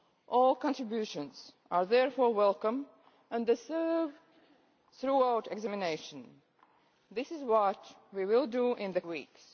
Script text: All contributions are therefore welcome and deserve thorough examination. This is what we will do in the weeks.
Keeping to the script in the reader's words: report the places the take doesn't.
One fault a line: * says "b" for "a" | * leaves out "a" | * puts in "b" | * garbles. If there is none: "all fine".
all fine